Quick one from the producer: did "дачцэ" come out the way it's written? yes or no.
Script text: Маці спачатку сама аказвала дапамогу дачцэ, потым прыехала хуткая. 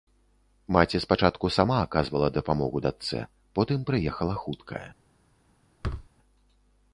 yes